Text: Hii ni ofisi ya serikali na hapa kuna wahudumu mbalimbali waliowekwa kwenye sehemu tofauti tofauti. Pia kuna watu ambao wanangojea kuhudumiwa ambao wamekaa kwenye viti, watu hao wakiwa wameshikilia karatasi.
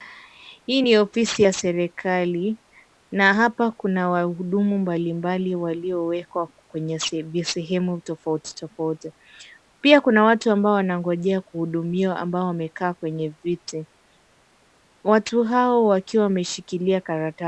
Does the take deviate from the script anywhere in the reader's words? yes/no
no